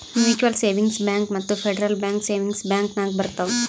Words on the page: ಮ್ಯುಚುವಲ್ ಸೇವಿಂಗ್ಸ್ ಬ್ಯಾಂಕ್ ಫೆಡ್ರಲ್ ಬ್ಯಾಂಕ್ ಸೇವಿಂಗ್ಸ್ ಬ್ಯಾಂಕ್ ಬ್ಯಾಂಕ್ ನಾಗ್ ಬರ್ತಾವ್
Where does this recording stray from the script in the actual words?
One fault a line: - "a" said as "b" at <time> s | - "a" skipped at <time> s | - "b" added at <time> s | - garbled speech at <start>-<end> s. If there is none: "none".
- "ಮತ್ತ" added at 1.3 s
- "ಬ್ಯಾಂಕ್" skipped at 3.0 s